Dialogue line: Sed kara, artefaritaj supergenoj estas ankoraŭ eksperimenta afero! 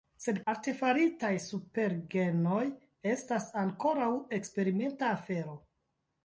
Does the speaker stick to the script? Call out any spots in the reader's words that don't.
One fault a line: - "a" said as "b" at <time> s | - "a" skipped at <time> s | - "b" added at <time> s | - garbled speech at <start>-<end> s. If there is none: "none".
- "kara" skipped at 0.4 s